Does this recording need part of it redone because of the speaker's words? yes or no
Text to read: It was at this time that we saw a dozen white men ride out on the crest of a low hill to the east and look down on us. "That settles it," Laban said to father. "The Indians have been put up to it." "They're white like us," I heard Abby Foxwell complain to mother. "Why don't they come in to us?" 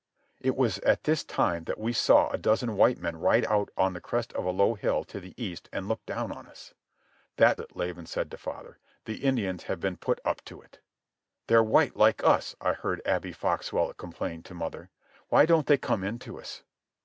yes